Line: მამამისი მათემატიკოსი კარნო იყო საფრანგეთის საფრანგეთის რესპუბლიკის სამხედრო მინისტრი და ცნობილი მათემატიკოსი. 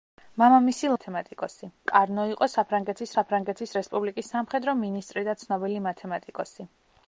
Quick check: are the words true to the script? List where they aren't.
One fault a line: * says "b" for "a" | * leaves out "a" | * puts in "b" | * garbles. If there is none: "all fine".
all fine